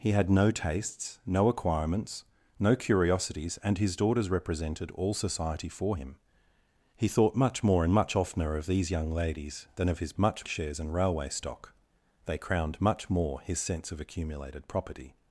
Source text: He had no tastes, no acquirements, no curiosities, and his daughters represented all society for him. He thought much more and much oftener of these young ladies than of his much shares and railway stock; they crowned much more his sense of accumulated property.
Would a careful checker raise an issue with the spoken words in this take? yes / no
no